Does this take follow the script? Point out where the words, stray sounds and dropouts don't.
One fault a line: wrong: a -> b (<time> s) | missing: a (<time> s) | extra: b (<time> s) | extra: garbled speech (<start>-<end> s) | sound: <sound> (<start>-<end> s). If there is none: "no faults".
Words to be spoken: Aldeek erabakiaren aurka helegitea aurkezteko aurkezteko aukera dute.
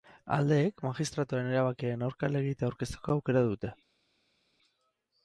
extra: magistratuaren (0.8 s)
missing: aurkezteko (3.2 s)